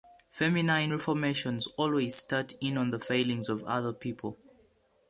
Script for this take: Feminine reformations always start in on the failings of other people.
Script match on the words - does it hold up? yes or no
yes